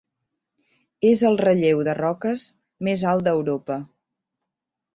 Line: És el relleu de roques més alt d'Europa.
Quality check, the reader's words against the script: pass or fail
pass